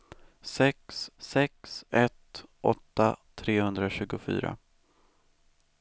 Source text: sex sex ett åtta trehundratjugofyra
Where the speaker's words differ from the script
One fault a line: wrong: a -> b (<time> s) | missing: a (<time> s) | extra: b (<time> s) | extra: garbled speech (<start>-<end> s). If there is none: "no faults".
no faults